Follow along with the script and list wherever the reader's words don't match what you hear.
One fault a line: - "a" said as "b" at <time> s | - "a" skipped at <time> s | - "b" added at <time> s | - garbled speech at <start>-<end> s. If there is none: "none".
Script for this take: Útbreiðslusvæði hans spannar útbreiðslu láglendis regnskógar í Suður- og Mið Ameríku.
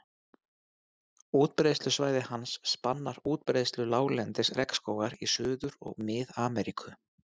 none